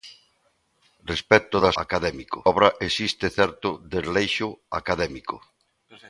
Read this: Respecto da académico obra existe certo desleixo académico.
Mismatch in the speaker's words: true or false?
false